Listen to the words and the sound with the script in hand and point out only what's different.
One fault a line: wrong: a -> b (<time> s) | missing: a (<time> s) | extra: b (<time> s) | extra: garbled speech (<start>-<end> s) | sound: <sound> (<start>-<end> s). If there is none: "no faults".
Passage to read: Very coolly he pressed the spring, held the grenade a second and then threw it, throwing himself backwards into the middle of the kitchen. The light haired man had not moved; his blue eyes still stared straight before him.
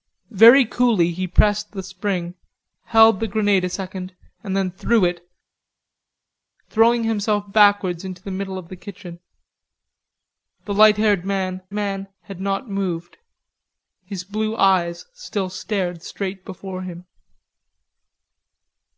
extra: man (11.7 s)